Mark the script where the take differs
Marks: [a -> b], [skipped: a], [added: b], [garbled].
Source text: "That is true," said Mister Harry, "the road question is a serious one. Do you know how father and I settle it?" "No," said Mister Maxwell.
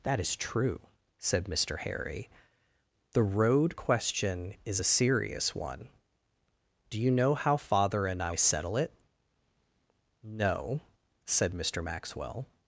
"That is true," said Mister Harry, "the road question is a serious one. Do you know how father and I settle it?" "No," said Mister Maxwell.